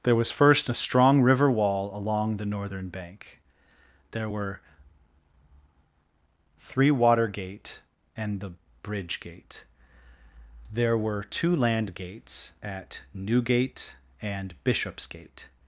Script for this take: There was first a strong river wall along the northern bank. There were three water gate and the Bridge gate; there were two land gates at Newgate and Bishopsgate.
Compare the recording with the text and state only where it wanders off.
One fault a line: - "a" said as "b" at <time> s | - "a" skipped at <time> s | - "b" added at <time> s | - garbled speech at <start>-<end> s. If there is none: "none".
none